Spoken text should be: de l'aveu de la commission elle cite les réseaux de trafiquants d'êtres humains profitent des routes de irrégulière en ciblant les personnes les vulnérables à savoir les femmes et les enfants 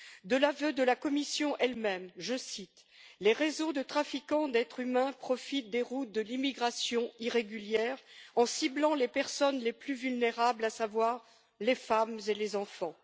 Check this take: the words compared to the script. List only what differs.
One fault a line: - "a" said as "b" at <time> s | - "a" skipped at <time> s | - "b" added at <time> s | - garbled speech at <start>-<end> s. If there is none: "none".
- "même je" added at 1.8 s
- "l'immigration" added at 6.2 s
- "plus" added at 9.7 s